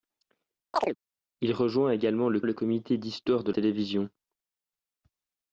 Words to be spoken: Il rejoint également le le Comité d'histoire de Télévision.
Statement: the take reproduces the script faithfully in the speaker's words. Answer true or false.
true